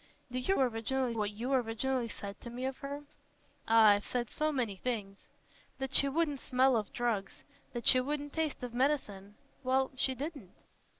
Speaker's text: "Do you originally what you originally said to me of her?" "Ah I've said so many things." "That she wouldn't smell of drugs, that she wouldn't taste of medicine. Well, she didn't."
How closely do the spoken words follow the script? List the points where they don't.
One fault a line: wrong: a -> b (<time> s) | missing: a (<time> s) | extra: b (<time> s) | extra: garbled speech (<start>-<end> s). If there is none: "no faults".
no faults